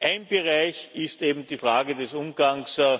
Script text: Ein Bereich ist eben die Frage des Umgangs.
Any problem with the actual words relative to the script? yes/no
no